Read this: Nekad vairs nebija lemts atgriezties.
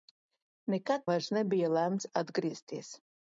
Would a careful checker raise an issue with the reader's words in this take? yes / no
no